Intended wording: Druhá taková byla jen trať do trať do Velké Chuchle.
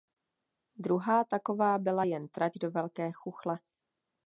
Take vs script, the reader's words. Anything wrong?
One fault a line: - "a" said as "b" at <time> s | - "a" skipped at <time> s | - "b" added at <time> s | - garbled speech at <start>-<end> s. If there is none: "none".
- "trať do" skipped at 2.7 s